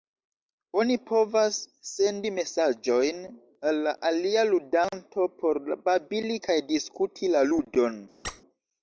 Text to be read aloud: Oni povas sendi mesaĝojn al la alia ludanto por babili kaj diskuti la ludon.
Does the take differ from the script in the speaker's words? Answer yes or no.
no